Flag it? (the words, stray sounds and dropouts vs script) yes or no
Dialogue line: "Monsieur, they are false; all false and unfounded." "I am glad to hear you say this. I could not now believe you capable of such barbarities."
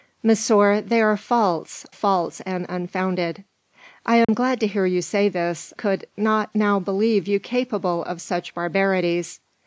yes